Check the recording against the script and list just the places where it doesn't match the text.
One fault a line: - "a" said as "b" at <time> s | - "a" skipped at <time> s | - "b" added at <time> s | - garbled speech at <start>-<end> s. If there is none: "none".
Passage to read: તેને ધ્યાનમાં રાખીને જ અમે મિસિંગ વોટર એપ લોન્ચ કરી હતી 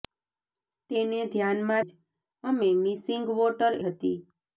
- "રાખીને" skipped at 1.8 s
- "એપ લોન્ચ કરી" skipped at 3.7 s